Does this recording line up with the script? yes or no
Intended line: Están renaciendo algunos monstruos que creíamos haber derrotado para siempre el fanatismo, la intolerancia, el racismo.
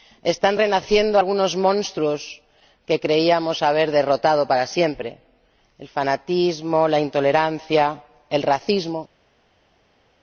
yes